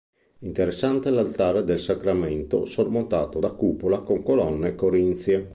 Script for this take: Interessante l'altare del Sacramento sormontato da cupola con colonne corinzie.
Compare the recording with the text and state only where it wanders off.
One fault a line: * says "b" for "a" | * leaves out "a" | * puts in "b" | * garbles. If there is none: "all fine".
all fine